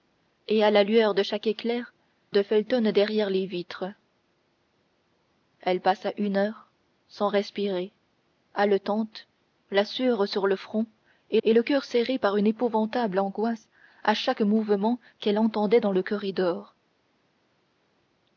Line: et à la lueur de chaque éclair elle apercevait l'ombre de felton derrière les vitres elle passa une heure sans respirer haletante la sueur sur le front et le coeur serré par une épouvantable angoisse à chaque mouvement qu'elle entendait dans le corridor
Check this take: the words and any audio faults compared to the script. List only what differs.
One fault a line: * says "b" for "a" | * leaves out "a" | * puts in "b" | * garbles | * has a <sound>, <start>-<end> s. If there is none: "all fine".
* leaves out "elle apercevait l'ombre"
* puts in "et"